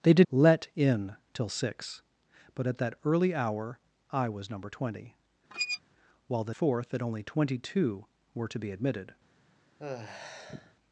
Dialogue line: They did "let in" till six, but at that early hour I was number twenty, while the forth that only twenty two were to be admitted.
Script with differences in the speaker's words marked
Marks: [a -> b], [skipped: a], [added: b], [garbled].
They did "let in" till six, but at that early hour I was number twenty, while the forth that only twenty two were to be admitted.